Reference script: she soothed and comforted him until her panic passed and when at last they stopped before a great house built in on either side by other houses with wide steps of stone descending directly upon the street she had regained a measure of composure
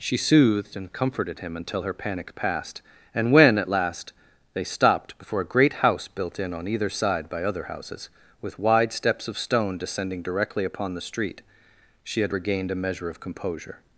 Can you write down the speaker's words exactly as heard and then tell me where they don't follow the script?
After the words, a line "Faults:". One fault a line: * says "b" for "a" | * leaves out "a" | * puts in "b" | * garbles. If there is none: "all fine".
she soothed and comforted him until her panic passed and when at last they stopped before a great house built in on either side by other houses with wide steps of stone descending directly upon the street she had regained a measure of composure
Faults:
all fine